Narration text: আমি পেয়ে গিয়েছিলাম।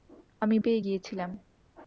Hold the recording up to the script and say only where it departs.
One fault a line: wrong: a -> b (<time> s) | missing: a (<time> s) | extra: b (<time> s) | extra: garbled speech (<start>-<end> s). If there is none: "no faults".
no faults